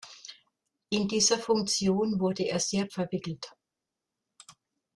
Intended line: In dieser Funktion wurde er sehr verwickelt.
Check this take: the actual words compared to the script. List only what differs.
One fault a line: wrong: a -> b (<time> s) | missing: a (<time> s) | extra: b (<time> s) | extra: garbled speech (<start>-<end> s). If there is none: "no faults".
no faults